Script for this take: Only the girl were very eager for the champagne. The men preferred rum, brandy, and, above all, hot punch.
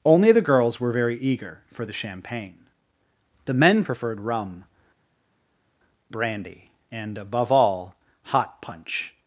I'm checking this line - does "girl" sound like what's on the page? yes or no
no